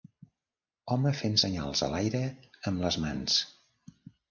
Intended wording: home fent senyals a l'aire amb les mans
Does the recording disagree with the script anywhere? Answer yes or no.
no